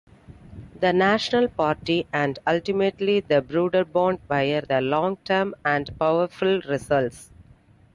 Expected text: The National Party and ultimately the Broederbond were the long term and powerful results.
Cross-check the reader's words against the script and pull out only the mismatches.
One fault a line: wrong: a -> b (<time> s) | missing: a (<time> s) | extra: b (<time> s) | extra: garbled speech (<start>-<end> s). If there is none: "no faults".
no faults